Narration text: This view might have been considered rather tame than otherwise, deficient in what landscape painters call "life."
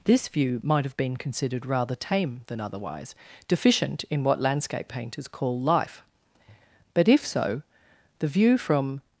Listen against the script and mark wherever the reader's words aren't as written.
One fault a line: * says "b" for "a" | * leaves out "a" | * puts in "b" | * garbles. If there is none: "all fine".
* puts in "But if so the view from"